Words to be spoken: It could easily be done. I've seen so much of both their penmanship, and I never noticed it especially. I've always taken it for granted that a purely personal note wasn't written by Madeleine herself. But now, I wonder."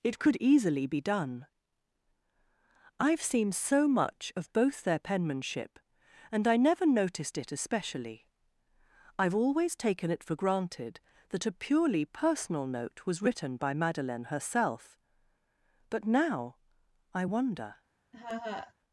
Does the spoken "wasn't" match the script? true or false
false